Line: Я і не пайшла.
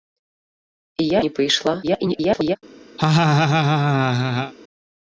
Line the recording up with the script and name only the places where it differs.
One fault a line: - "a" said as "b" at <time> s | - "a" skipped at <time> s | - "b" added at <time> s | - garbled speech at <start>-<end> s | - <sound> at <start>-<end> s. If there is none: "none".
- "і" skipped at 1.2 s
- garbled speech at 1.8-2.6 s
- laugh at 3.0-4.5 s